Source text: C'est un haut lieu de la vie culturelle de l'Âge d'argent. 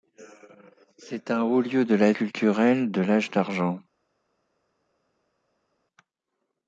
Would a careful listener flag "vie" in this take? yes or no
yes